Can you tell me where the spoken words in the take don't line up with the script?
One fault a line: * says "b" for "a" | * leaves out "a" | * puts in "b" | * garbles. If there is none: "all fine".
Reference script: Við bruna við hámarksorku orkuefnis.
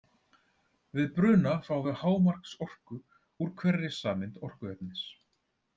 * puts in "fáum"
* puts in "úr hverri sameind"